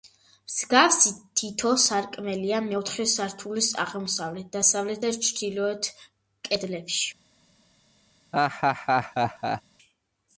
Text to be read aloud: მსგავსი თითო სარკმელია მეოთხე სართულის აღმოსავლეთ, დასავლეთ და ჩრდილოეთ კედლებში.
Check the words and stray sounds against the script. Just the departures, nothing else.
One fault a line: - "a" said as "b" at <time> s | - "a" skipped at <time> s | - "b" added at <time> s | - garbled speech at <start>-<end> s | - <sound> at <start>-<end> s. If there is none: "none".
- laugh at 8.3-9.6 s